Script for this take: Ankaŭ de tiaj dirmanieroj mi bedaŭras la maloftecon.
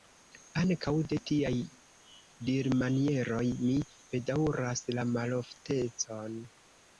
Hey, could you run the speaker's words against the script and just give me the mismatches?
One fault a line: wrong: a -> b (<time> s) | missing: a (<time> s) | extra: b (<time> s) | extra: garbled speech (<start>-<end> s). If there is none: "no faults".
no faults